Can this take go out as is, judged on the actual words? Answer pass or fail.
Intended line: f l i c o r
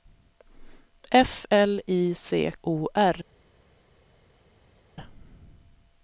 pass